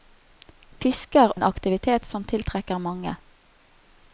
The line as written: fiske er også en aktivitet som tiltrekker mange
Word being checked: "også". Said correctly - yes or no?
no